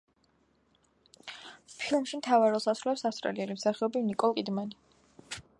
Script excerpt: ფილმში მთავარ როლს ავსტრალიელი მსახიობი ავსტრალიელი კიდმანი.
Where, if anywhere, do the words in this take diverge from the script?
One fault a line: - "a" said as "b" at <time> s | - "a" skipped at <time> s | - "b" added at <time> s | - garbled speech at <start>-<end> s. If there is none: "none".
- "ასრულებს" added at 2.7 s
- "ავსტრალიელი" said as "ნიკოლ" at 4.1 s